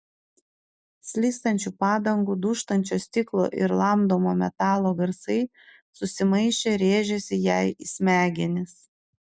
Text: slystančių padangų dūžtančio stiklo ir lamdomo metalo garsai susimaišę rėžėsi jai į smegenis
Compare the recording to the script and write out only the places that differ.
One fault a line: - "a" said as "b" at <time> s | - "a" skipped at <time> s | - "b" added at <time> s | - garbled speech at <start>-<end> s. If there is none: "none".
none